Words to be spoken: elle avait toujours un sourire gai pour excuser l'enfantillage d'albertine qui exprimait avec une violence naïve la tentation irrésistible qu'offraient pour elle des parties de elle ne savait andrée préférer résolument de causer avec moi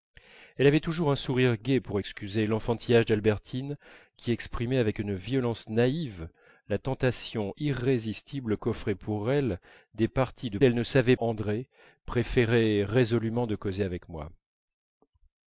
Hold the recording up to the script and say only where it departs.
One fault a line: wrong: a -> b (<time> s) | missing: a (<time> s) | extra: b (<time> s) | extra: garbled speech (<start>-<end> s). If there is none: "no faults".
no faults